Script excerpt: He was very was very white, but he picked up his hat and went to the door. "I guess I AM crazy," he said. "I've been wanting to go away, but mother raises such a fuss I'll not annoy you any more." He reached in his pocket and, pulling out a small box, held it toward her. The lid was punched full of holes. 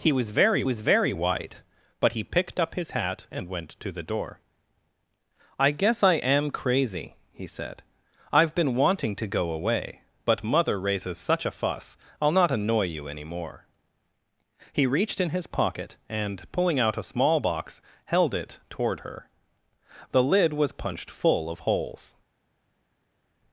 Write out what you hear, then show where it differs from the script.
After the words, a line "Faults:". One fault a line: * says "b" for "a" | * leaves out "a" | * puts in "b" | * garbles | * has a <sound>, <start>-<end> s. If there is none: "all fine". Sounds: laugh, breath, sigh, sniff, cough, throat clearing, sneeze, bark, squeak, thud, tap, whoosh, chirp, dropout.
He was very was very white, but he picked up his hat and went to the door. "I guess I AM crazy," he said. "I've been wanting to go away, but mother raises such a fuss I'll not annoy you any more." He reached in his pocket and, pulling out a small box, held it toward her. The lid was punched full of holes.
Faults:
all fine